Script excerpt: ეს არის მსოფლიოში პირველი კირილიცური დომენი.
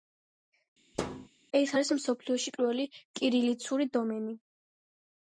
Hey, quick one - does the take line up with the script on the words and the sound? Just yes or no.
no